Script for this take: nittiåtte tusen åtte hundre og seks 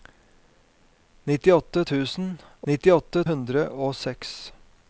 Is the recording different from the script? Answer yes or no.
yes